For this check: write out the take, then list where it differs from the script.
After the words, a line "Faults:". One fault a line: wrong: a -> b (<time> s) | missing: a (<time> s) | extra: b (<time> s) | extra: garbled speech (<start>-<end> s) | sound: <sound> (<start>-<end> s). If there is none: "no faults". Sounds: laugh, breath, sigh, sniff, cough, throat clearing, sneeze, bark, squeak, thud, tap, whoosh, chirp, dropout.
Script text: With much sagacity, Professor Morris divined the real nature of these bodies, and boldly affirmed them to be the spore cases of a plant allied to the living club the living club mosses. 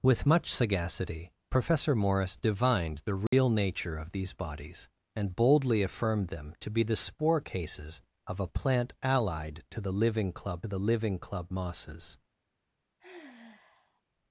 With much sagacity, Professor Morris divined the real nature of these bodies, and boldly affirmed them to be the spore cases of a plant allied to the living club the living club mosses.
Faults:
sound: dropout (3.3-3.3 s)
sound: sigh (13.0-14.0 s)